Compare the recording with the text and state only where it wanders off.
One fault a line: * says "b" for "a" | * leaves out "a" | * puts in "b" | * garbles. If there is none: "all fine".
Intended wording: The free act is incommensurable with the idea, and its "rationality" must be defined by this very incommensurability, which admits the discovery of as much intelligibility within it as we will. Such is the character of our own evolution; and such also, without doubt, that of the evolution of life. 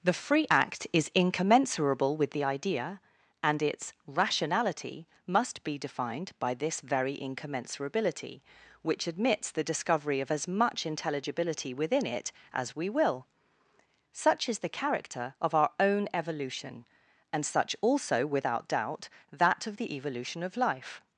all fine